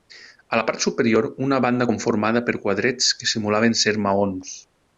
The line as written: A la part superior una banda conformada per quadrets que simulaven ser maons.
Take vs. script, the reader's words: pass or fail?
pass